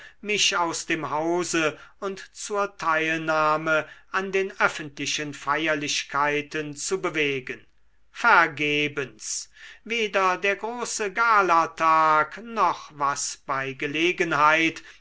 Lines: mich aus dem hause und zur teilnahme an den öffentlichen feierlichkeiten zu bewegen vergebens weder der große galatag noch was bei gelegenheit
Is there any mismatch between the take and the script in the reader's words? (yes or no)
no